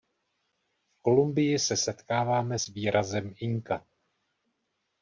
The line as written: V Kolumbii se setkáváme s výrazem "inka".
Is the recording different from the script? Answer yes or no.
no